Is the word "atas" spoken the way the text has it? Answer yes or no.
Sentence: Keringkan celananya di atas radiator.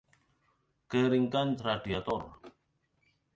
no